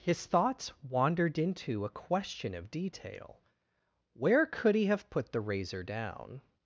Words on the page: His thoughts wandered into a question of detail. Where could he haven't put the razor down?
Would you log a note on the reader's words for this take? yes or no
yes